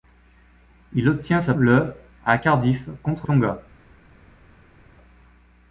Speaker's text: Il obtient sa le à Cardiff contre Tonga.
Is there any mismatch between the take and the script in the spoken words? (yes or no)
no